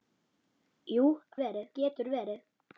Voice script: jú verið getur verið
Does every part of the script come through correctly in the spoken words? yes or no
yes